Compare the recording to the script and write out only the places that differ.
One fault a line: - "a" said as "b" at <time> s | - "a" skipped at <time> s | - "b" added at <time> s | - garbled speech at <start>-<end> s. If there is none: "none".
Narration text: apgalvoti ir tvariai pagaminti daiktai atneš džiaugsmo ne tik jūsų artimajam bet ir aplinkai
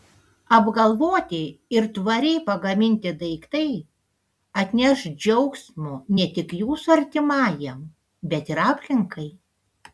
none